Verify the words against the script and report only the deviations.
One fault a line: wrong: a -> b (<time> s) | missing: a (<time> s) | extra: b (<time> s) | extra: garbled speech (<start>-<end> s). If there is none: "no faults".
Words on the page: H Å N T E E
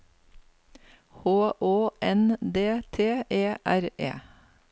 extra: D (2.4 s)
extra: R (3.7 s)